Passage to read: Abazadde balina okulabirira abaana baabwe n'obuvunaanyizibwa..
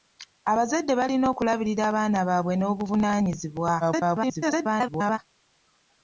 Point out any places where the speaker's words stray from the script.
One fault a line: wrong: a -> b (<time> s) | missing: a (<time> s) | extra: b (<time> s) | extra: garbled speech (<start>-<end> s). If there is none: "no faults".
extra: garbled speech (3.8-5.2 s)